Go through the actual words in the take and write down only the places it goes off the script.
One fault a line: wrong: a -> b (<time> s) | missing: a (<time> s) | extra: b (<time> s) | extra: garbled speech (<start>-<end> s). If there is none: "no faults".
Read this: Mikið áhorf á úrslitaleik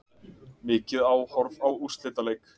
no faults